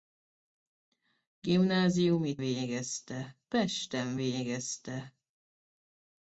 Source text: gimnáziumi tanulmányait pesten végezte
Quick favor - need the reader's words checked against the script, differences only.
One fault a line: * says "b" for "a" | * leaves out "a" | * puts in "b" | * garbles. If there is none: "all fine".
* says "végezte" for "tanulmányait"